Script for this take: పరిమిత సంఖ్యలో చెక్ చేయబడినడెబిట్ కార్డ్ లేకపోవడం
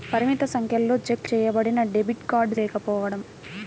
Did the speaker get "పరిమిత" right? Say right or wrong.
right